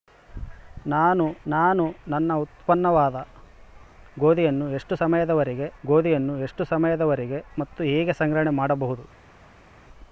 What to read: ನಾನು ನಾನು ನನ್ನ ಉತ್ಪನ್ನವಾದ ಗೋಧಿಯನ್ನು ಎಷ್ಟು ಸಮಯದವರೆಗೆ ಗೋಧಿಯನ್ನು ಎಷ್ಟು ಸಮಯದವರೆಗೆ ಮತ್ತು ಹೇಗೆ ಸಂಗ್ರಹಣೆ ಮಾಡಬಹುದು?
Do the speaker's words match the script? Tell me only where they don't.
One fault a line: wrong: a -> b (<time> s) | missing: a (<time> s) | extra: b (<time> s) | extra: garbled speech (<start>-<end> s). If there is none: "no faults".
no faults